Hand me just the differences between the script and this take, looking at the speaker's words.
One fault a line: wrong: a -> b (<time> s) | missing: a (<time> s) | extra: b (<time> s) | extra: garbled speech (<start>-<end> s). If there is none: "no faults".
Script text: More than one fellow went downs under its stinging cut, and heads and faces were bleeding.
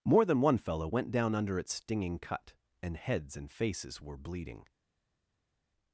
wrong: downs -> down (1.1 s)